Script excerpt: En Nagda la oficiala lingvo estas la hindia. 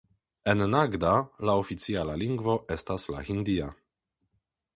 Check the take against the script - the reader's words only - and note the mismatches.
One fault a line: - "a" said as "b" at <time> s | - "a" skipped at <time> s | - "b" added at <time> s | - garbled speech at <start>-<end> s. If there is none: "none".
none